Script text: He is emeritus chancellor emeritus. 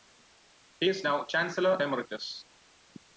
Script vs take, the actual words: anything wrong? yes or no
yes